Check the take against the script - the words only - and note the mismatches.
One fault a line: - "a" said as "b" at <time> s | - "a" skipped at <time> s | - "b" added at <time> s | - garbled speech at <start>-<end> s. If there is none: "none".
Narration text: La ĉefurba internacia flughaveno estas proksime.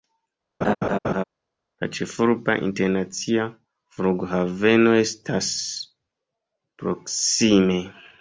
none